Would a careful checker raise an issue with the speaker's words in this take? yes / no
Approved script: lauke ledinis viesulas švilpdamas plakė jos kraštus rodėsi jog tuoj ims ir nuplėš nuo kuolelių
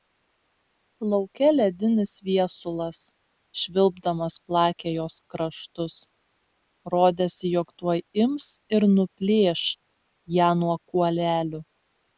yes